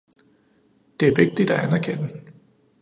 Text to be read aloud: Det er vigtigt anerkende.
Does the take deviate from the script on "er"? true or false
false